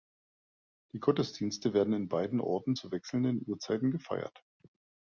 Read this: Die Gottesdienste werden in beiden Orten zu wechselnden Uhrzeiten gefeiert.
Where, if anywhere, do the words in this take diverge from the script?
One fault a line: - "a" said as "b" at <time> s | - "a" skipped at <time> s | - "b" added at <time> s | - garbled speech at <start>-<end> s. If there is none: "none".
none